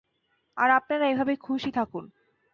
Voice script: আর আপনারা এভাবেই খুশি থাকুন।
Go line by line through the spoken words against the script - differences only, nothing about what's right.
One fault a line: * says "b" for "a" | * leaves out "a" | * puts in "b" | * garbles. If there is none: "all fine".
all fine